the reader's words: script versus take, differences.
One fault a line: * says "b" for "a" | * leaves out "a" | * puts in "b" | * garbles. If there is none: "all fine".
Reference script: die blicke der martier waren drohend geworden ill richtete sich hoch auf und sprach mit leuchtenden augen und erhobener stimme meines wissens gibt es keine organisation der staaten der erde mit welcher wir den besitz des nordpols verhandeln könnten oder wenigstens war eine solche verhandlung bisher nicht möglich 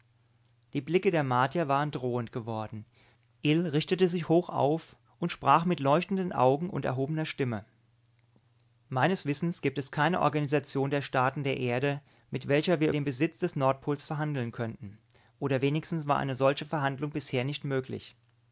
all fine